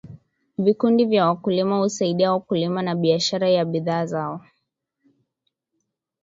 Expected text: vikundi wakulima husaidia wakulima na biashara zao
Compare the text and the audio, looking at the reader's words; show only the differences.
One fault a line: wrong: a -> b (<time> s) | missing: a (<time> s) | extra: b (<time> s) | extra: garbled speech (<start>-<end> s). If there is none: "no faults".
extra: vya (1.1 s)
extra: ya bidhaa (3.5 s)